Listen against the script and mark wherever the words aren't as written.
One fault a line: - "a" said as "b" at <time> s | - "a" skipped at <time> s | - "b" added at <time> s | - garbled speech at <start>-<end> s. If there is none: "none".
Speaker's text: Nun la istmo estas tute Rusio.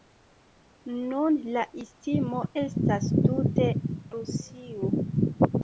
none